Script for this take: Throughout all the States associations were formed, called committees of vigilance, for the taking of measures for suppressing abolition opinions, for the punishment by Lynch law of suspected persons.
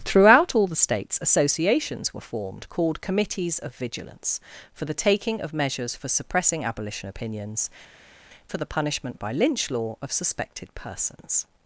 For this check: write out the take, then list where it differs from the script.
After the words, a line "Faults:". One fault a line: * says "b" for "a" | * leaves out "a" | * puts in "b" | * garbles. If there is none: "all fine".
Throughout all the States associations were formed, called committees of vigilance, for the taking of measures for suppressing abolition opinions, for the punishment by Lynch law of suspected persons.
Faults:
all fine